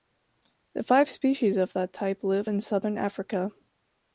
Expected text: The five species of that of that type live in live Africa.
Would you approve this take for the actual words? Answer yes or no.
no